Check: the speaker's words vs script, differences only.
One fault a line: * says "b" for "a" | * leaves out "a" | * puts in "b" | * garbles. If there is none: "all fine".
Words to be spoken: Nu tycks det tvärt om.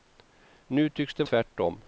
all fine